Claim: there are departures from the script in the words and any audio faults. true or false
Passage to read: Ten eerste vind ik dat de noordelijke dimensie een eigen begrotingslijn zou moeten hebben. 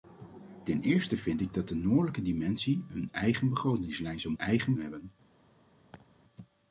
true